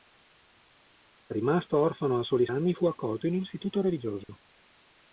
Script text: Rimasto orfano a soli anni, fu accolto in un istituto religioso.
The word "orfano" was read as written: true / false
true